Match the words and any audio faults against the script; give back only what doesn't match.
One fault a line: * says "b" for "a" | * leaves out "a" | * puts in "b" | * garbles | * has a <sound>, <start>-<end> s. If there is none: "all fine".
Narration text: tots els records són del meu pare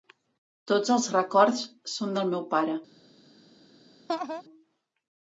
* has a laugh, 4.1-4.4 s